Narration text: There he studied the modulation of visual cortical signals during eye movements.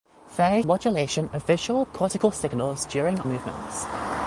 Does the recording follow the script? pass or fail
fail